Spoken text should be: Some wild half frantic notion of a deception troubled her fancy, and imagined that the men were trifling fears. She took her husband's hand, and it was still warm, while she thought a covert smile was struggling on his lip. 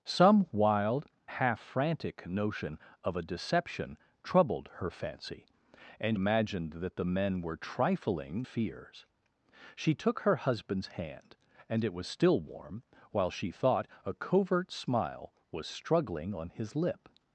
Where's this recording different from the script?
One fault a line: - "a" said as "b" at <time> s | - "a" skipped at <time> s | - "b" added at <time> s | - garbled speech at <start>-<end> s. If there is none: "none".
none